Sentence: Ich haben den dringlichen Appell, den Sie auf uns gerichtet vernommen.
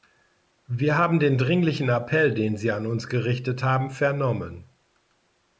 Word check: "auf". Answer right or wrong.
wrong